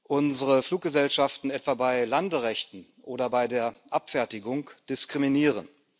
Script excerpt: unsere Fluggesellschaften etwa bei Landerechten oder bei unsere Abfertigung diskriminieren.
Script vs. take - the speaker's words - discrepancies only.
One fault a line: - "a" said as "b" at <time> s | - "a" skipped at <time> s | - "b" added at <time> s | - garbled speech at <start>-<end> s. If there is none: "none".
- "unsere" said as "der" at 3.5 s